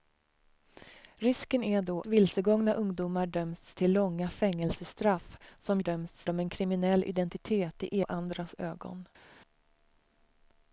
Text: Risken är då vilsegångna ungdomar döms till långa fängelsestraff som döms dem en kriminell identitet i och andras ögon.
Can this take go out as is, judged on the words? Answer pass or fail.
pass